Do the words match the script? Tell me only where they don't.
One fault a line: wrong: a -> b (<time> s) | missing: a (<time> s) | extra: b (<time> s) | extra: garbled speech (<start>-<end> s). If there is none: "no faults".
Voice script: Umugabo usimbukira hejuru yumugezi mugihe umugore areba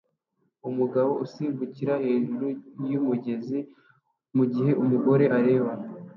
no faults